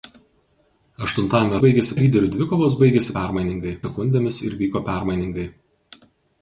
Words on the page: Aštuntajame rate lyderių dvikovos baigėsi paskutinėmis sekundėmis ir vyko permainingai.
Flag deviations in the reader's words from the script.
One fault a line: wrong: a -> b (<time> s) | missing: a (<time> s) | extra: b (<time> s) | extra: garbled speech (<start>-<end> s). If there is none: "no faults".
wrong: rate -> baigėsi (1.7 s)
wrong: paskutinėmis -> permainingai (3.2 s)